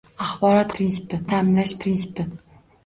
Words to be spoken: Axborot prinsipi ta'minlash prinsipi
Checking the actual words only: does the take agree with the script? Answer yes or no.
yes